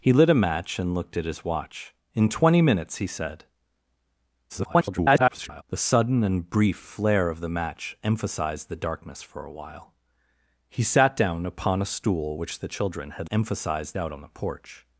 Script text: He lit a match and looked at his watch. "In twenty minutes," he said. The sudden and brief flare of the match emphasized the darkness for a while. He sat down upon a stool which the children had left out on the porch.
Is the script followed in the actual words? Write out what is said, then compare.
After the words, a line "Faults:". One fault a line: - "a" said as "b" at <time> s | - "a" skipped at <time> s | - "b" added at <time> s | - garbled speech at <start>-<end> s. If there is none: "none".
He lit a match and looked at his watch. "In twenty minutes," he said. [garbled] The sudden and brief flare of the match emphasized the darkness for a while. He sat down upon a stool which the children had emphasized out on the porch.
Faults:
- garbled speech at 4.5-5.6 s
- "left" said as "emphasized" at 13.3 s